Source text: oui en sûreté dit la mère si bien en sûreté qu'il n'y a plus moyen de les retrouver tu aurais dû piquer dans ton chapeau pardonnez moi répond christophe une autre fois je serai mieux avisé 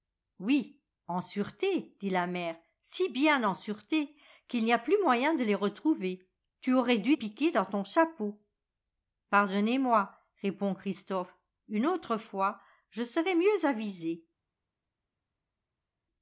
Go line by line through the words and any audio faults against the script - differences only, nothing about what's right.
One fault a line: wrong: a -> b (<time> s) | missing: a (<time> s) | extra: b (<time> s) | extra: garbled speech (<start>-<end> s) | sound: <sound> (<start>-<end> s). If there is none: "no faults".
no faults